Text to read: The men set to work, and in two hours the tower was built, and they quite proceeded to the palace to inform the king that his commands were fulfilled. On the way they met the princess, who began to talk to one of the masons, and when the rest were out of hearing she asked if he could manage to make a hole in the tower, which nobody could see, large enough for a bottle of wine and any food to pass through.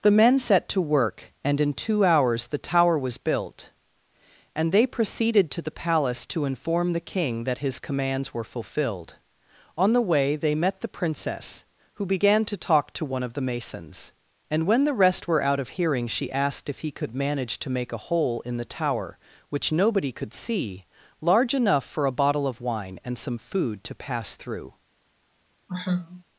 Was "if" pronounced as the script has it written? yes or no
yes